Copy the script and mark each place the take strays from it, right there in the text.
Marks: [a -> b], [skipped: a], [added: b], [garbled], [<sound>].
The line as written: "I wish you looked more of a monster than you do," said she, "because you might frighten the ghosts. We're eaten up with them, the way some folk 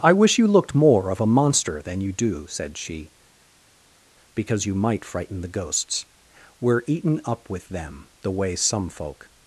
"I wish you looked more of a monster than you do," said she, "because you might frighten the ghosts. We're eaten up with them, the way some folk